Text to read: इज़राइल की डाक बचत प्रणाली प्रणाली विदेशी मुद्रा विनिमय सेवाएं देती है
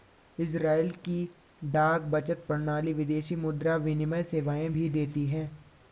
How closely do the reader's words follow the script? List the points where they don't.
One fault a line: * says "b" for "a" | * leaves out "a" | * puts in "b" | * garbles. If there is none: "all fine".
* leaves out "प्रणाली"
* puts in "भी"